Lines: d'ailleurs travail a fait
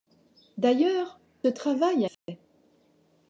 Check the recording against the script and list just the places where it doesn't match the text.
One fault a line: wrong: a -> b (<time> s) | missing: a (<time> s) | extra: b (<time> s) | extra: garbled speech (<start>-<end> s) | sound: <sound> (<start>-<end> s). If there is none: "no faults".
sound: dropout (2.1-2.3 s)